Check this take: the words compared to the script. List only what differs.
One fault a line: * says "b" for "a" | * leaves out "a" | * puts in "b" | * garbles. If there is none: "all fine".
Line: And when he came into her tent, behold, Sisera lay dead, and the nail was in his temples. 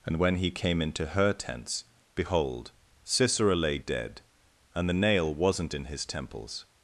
* says "tents" for "tent"
* says "wasn't" for "was"